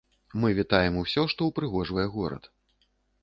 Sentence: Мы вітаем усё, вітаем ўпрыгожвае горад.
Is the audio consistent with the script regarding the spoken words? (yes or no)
no